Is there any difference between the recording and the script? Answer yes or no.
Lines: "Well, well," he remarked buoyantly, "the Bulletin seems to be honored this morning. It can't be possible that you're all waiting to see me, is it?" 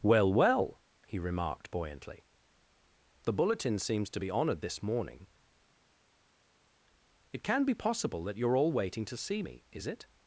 yes